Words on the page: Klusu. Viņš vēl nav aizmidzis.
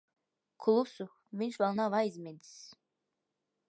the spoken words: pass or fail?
pass